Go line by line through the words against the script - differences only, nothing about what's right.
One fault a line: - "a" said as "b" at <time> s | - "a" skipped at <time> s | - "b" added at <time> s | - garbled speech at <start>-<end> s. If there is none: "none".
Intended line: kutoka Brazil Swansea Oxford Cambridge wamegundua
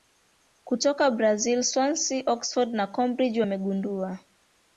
- "na" added at 2.7 s